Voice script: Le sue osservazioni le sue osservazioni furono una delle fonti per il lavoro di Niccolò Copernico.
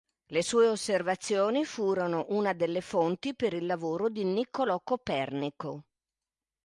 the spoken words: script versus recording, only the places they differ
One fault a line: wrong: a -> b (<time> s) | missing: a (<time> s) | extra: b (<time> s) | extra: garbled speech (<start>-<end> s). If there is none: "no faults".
missing: le sue osservazioni (1.6 s)